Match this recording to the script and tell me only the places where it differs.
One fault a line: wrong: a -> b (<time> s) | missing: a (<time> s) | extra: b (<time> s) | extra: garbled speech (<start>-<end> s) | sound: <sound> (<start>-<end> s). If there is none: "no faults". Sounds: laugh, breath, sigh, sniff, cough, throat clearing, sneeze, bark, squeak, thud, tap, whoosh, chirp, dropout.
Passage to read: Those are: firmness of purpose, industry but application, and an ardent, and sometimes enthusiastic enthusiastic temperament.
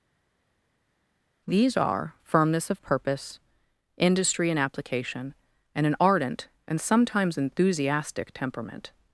wrong: Those -> These (1.5 s)
wrong: but -> and (4.5 s)
missing: enthusiastic (8.3 s)